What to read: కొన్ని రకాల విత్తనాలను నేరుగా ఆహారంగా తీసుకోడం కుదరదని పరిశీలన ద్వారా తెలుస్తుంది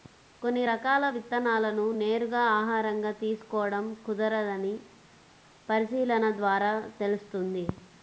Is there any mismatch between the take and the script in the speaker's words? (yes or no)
no